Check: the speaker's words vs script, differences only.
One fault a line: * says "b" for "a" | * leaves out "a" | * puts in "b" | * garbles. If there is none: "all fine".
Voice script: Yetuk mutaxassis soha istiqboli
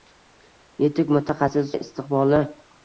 * leaves out "soha"